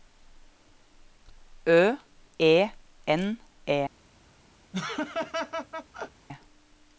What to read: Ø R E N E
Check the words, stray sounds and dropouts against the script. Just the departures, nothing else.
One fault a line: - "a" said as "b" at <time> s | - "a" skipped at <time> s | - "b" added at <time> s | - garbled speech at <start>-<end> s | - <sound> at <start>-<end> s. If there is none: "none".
- "R" skipped at 1.9 s
- laugh at 4.7-6.3 s